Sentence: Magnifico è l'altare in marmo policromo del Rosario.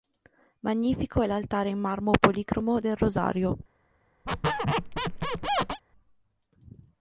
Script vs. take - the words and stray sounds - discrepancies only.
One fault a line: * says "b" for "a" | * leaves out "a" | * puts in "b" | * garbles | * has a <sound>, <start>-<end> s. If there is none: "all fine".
* has a squeak, 4.3-5.8 s